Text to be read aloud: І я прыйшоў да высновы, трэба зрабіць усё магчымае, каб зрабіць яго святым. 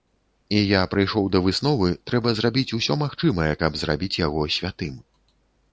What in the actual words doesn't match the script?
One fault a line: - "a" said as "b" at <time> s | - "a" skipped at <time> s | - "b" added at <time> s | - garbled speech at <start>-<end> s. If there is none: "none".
none